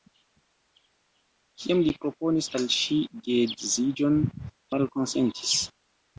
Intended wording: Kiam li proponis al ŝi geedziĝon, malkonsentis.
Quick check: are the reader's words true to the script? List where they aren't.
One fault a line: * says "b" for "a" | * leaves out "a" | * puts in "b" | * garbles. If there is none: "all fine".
all fine